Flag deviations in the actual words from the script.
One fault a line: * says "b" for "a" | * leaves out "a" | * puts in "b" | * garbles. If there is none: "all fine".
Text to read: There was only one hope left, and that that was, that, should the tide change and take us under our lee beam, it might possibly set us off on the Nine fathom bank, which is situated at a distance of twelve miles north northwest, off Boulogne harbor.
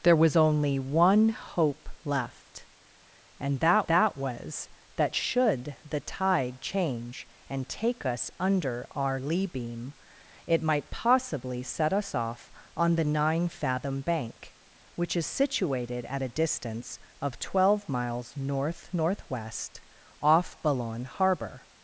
all fine